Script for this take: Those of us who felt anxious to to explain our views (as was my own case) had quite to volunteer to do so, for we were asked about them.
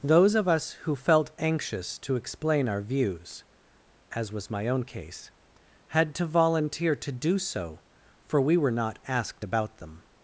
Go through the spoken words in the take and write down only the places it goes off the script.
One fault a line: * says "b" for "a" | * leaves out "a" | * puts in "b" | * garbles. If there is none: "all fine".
* leaves out "to"
* leaves out "quite"
* puts in "not"